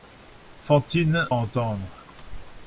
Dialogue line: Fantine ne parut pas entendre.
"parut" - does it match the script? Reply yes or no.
no